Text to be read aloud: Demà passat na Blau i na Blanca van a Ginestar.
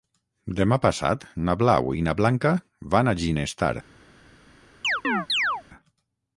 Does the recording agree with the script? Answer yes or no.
yes